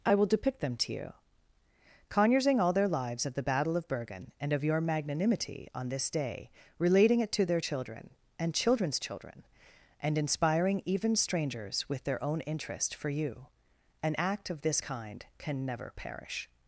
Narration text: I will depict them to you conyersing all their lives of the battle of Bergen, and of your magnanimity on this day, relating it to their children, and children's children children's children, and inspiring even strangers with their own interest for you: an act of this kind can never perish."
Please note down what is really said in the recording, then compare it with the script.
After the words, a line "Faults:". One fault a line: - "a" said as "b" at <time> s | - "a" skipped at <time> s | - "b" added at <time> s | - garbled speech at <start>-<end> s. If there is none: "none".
I will depict them to you conyersing all their lives of the battle of Bergen, and of your magnanimity on this day, relating it to their children, and children's children, and inspiring even strangers with their own interest for you: an act of this kind can never perish."
Faults:
- "children's children" skipped at 9.4 s